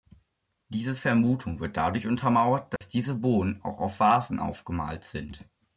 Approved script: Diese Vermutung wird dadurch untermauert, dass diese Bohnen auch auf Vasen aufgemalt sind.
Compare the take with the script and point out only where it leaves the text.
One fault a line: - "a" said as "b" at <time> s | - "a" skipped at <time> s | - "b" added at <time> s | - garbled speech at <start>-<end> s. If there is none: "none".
none